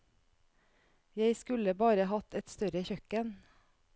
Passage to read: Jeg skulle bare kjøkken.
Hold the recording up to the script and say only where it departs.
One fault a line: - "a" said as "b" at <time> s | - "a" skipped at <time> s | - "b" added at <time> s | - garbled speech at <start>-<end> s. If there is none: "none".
- "hatt et større" added at 2.1 s